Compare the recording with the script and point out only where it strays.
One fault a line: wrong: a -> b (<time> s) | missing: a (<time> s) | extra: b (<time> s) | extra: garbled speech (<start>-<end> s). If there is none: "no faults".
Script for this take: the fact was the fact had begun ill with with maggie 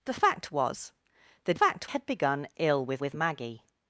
no faults